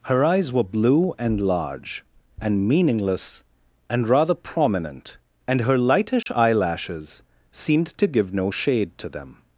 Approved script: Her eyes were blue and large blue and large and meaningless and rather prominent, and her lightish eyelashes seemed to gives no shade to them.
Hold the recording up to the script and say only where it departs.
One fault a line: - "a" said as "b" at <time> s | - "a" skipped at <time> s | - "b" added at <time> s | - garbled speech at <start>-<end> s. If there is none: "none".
- "blue" skipped at 2.0 s
- "large and" skipped at 2.7 s
- "gives" said as "give" at 8.1 s